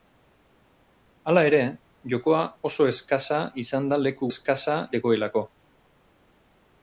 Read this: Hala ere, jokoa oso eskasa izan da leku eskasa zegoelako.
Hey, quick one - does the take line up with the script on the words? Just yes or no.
yes